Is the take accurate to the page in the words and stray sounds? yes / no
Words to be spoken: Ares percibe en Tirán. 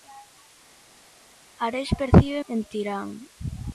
yes